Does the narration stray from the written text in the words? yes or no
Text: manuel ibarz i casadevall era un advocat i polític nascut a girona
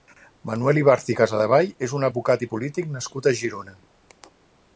yes